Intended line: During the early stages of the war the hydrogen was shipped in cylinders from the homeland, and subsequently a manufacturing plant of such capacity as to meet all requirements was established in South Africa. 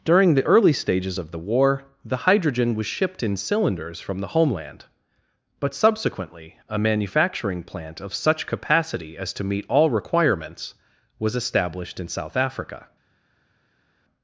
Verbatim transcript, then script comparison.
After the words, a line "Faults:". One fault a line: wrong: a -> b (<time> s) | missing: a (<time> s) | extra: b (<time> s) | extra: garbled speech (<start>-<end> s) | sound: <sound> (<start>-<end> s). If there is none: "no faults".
During the early stages of the war the hydrogen was shipped in cylinders from the homeland, but subsequently a manufacturing plant of such capacity as to meet all requirements was established in South Africa.
Faults:
wrong: and -> but (5.6 s)